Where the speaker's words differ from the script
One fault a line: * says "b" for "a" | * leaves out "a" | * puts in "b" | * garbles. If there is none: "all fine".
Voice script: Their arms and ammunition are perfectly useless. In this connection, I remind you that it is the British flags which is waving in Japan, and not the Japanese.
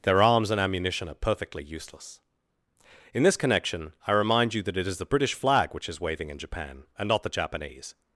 * says "flag" for "flags"